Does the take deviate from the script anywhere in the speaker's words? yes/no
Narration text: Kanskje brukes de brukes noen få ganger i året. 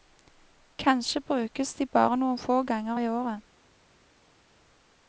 yes